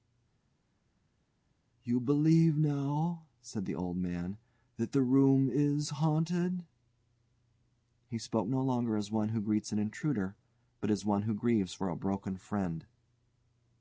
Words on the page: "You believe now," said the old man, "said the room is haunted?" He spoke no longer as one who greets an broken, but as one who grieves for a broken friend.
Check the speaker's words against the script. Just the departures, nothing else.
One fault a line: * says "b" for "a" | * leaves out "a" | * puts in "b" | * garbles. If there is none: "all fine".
* says "that" for "said"
* says "intruder" for "broken"